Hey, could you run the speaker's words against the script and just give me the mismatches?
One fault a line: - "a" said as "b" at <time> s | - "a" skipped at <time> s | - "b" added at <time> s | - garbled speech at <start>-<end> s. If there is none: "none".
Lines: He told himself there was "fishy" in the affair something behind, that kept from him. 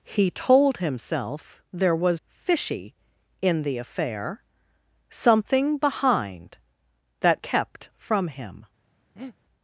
none